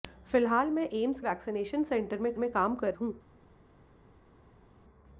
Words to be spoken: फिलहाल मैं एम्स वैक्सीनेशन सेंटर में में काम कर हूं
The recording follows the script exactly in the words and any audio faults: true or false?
true